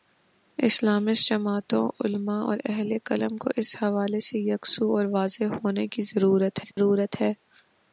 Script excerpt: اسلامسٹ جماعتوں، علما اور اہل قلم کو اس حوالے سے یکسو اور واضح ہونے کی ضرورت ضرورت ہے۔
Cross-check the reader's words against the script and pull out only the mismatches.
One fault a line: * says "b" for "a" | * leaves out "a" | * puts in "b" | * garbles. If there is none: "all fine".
all fine